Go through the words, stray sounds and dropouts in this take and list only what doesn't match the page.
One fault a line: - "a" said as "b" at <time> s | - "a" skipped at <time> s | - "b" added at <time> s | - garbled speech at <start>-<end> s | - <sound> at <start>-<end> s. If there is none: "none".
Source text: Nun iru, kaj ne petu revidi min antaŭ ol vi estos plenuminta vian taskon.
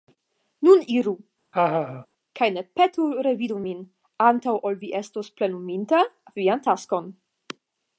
- laugh at 1.5-2.1 s